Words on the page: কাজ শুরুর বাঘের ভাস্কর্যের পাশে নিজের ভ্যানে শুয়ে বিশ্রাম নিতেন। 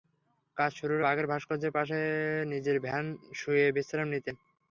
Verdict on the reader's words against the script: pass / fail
pass